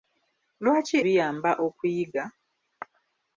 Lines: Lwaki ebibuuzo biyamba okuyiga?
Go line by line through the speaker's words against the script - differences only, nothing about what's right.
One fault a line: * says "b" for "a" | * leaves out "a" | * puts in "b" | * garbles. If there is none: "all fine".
* leaves out "ebibuuzo"